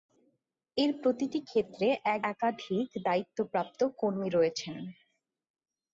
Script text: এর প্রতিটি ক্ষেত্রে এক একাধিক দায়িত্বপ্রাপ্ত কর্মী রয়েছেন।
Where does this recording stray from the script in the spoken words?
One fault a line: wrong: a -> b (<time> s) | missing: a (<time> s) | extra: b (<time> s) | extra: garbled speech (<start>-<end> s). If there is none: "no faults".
no faults